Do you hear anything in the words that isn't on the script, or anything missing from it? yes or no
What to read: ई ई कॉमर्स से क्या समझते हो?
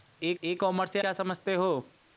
no